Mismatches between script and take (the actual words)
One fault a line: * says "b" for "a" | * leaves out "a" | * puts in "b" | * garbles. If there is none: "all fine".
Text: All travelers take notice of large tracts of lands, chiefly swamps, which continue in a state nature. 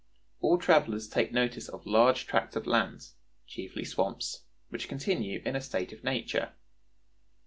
* puts in "of"